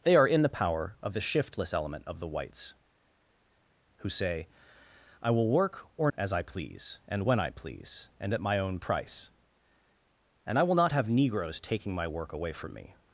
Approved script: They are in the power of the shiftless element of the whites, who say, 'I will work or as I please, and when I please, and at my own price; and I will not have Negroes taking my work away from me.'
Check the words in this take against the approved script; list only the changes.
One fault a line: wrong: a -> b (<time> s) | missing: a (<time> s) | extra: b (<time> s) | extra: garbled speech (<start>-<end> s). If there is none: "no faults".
no faults